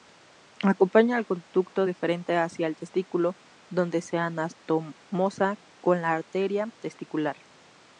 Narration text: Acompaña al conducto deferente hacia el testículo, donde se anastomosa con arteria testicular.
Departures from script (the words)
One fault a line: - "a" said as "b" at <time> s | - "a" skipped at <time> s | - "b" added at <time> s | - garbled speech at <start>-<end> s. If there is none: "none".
- "la" added at 6.0 s